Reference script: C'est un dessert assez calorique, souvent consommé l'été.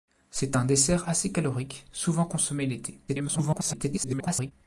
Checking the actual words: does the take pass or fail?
fail